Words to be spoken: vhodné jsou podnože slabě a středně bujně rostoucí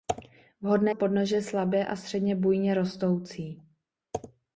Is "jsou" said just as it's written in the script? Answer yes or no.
no